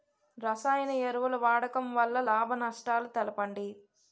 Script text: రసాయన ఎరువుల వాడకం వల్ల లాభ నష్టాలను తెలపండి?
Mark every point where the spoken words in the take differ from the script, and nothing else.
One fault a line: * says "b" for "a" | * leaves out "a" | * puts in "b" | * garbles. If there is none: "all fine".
all fine